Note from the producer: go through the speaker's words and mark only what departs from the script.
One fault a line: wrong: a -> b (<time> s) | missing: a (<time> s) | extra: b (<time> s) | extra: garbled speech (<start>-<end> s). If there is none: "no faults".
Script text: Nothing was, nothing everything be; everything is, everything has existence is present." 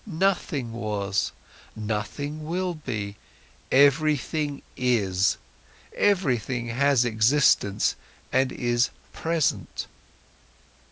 wrong: everything -> will (2.4 s)
extra: and (8.3 s)